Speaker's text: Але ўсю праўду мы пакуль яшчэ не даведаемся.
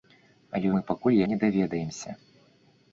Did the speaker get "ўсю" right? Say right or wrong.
wrong